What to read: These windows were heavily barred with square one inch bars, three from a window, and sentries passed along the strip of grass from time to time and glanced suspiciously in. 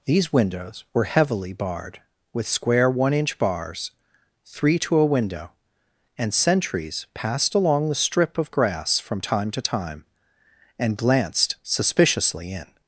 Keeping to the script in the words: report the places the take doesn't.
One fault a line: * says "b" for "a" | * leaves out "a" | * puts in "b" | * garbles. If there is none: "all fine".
* says "to" for "from"